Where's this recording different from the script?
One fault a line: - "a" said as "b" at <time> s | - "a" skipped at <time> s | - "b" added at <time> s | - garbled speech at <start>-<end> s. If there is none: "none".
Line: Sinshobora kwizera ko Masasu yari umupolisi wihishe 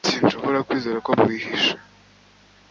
- "Masasu yari umupolisi" skipped at 1.1 s